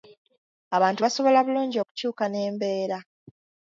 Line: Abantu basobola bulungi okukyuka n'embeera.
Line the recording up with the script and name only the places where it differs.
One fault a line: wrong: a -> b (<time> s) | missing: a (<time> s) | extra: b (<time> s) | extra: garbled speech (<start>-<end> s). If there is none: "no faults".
no faults